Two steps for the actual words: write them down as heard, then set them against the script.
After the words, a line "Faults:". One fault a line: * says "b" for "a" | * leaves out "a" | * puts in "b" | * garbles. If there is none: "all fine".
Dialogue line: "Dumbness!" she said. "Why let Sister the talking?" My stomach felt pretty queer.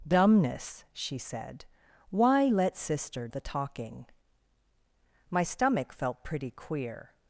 "Dumbness!" she said. "Why let Sister the talking?" My stomach felt pretty queer.
Faults:
all fine